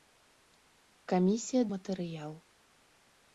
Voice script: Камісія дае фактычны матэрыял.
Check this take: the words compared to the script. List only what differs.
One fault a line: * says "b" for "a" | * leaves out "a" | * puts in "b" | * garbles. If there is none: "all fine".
* leaves out "дае фактычны"